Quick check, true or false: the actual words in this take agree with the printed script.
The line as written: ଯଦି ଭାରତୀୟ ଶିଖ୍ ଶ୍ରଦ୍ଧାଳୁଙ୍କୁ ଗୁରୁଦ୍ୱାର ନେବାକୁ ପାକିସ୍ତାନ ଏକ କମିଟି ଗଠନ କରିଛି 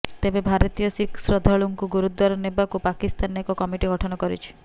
false